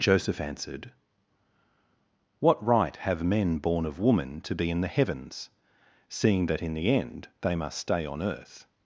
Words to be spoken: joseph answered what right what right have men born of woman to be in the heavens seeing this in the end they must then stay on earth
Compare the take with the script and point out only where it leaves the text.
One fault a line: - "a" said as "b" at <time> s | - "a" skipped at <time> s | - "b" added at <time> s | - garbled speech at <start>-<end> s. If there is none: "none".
- "what right" skipped at 3.0 s
- "this" said as "that" at 6.5 s
- "then" skipped at 7.8 s